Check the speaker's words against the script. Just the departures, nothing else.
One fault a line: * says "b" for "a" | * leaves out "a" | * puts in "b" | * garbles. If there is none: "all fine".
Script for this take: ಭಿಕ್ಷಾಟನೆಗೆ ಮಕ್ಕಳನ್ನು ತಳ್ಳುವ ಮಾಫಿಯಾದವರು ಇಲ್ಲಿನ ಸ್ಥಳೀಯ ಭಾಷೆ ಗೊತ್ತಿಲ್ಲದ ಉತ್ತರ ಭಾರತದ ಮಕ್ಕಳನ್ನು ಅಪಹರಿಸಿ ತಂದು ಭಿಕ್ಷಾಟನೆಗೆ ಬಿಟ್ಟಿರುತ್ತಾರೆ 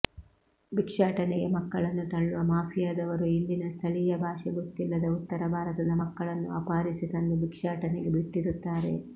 all fine